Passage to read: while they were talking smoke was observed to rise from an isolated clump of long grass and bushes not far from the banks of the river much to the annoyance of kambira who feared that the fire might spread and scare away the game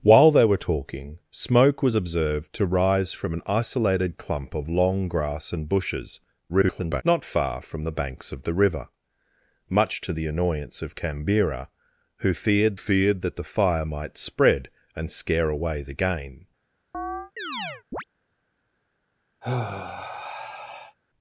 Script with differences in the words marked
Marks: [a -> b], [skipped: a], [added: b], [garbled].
while they were talking smoke was observed to rise from an isolated clump of long grass and bushes [garbled] not far from the banks of the river much to the annoyance of kambira who feared [added: feared] that the fire might spread and scare away the game